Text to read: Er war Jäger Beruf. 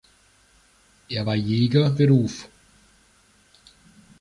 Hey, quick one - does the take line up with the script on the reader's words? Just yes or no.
yes